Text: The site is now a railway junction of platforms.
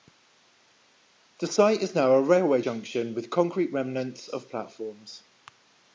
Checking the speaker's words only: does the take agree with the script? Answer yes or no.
no